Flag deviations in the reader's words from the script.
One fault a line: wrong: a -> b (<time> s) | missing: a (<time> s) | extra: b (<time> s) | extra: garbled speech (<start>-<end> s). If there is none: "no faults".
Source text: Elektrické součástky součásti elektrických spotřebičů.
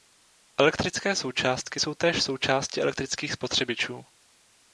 extra: jsou též (1.8 s)